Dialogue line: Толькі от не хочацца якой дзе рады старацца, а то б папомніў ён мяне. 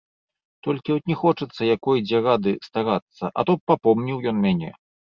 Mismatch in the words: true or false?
false